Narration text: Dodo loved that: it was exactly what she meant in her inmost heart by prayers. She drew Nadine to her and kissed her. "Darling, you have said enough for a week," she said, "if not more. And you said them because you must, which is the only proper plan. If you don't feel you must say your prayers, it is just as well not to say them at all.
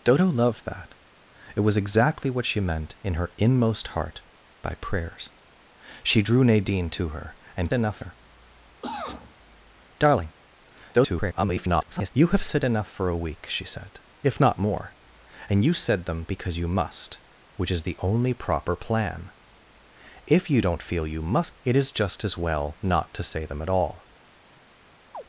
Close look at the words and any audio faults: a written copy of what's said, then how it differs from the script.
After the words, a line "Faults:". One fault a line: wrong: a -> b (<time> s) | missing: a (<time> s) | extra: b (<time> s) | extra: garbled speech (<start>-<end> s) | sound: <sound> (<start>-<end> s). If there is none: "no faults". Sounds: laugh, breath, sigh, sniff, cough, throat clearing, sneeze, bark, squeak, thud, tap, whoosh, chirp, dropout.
Dodo loved that: it was exactly what she meant in her inmost heart by prayers. She drew Nadine to her and enough her. "Darling, [garbled] you have said enough for a week," she said, "if not more. And you said them because you must, which is the only proper plan. If you don't feel you must it is just as well not to say them at all.
Faults:
wrong: kissed -> enough (7.7 s)
sound: cough (8.8-9.3 s)
extra: garbled speech (10.9-12.1 s)
missing: say your prayers (21.6 s)
sound: chirp (25.1-25.2 s)